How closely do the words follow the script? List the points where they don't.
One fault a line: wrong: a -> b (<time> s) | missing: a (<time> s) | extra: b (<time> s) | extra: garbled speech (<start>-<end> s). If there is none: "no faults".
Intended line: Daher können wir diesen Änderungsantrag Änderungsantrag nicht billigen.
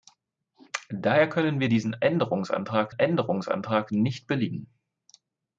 no faults